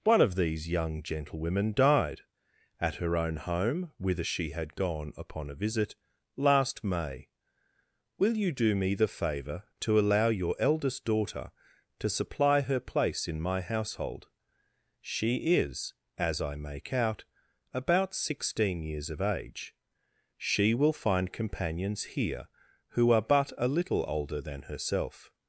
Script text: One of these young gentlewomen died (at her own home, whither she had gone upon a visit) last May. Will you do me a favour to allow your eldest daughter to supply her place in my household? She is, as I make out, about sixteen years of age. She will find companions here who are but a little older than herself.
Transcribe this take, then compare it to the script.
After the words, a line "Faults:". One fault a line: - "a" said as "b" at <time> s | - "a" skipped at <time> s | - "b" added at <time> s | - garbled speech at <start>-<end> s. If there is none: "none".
One of these young gentlewomen died (at her own home, whither she had gone upon a visit) last May. Will you do me the favour to allow your eldest daughter to supply her place in my household? She is, as I make out, about sixteen years of age. She will find companions here who are but a little older than herself.
Faults:
- "a" said as "the" at 8.9 s